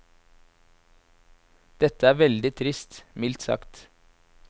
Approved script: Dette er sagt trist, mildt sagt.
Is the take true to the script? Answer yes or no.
no